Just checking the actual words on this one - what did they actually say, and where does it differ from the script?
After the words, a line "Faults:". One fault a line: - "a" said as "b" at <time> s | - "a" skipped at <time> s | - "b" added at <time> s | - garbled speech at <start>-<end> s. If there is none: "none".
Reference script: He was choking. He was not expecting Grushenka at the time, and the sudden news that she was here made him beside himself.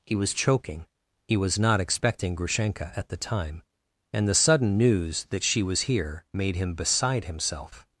He was choking. He was not expecting Grushenka at the time, and the sudden news that she was here made him beside himself.
Faults:
none